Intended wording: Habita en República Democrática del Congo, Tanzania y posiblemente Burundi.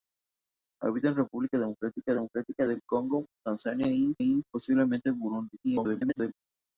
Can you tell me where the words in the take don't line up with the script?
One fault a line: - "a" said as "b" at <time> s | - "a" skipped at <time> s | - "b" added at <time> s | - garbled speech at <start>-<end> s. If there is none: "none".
- "Democrática" added at 2.1 s
- "y" added at 4.2 s
- garbled speech at 5.6-6.3 s